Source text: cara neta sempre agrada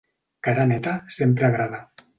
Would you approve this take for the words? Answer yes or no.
yes